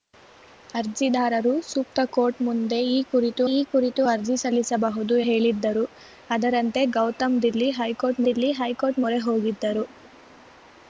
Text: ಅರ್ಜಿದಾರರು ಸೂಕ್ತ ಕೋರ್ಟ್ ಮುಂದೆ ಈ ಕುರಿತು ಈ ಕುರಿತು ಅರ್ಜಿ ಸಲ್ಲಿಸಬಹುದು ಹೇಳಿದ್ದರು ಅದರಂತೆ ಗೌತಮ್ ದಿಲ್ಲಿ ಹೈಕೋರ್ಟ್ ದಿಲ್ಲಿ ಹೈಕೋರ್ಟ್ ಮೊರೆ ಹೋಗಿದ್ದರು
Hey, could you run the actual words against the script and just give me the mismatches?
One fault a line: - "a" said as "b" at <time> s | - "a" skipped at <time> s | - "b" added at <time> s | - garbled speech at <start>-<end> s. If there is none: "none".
none